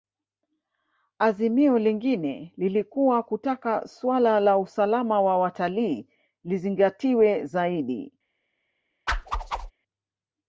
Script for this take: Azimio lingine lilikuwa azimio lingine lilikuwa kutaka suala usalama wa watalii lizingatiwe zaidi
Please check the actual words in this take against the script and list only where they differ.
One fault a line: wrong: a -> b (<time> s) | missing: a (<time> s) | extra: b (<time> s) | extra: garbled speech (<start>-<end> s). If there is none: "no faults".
missing: azimio lingine lilikuwa (3.2 s)
extra: la (4.4 s)